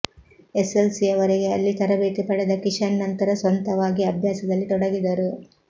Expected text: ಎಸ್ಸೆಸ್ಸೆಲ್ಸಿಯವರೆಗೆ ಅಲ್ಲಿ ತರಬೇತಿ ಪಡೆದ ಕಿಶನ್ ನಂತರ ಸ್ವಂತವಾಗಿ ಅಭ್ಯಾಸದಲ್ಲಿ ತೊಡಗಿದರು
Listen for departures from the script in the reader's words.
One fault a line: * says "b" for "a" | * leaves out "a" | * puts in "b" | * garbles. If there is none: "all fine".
all fine